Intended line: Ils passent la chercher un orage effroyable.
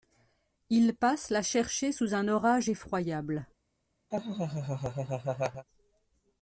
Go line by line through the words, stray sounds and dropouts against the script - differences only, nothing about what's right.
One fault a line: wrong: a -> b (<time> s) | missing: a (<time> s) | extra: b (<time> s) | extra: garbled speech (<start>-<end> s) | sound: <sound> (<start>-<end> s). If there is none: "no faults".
extra: sous (1.9 s)
sound: laugh (4.1-5.7 s)